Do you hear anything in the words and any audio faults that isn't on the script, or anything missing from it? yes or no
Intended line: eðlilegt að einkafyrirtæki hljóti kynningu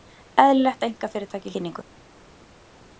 yes